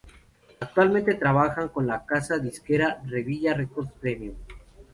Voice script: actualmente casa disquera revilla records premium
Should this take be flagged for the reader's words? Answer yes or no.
yes